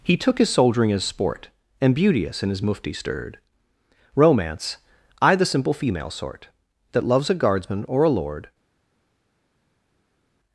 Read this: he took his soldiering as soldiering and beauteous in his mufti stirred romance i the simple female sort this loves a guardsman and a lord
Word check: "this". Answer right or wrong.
wrong